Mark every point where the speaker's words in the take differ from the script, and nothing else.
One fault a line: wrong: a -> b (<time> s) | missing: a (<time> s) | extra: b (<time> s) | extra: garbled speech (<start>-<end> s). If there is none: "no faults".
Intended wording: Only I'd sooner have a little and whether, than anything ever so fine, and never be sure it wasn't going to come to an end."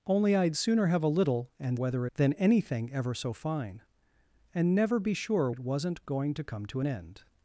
no faults